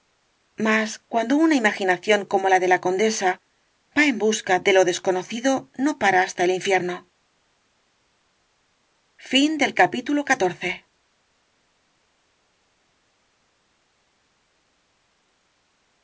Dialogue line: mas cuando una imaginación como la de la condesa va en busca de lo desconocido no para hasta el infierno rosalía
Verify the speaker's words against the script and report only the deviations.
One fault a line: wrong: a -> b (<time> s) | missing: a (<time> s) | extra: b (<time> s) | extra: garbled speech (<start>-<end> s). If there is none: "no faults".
no faults